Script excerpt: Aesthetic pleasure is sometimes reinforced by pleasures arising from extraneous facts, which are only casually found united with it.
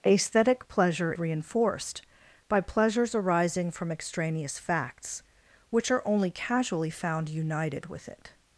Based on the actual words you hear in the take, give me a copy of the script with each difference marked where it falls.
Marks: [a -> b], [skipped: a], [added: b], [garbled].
Aesthetic pleasure [skipped: is sometimes] reinforced by pleasures arising from extraneous facts, which are only casually found united with it.